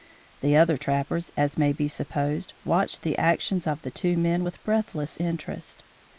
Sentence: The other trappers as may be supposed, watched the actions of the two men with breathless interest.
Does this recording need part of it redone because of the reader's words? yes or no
no